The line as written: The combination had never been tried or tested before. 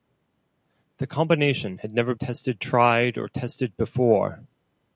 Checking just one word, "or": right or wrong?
right